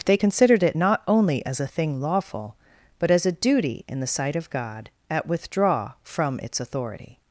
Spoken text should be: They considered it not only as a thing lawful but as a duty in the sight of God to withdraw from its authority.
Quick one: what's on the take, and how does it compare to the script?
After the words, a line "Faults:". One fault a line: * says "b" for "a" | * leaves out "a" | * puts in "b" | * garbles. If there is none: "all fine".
They considered it not only as a thing lawful but as a duty in the sight of God at withdraw from its authority.
Faults:
* says "at" for "to"